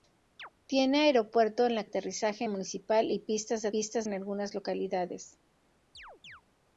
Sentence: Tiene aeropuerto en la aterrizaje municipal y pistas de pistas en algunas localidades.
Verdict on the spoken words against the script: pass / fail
pass